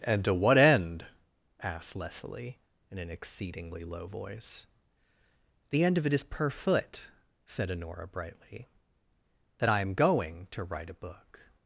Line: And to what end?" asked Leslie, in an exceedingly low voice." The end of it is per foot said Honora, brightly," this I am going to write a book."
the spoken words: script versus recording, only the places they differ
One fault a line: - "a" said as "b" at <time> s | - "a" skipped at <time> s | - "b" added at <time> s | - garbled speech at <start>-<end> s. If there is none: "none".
- "this" said as "that" at 9.6 s